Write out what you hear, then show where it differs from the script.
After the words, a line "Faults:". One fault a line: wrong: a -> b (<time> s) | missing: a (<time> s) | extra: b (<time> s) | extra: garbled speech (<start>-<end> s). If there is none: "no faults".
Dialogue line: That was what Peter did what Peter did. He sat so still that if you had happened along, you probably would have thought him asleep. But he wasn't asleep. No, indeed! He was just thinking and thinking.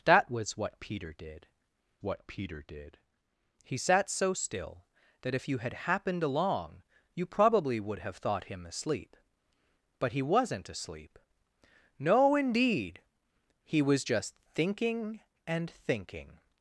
That was what Peter did what Peter did. He sat so still that if you had happened along, you probably would have thought him asleep. But he wasn't asleep. No, indeed! He was just thinking and thinking.
Faults:
no faults